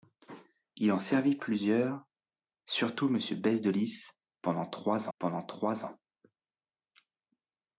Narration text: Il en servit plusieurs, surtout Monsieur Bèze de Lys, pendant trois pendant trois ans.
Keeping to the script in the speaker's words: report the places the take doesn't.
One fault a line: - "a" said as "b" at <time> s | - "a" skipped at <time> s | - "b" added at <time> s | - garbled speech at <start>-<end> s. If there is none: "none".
none